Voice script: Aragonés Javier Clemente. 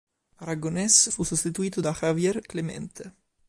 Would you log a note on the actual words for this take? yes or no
yes